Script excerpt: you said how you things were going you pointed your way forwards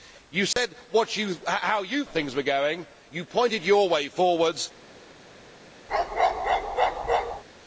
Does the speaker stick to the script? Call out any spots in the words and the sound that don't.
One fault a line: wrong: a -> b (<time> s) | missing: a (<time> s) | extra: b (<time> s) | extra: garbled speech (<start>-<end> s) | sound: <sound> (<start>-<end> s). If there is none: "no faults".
sound: dropout (0.5-0.6 s)
sound: bark (5.9-7.4 s)